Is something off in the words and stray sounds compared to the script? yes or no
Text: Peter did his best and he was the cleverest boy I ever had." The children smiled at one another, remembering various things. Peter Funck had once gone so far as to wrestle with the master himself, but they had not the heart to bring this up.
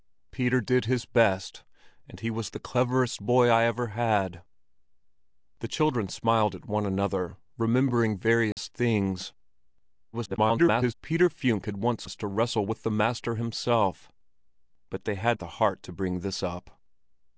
yes